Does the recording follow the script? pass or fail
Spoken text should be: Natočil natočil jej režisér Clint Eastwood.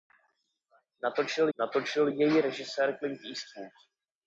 pass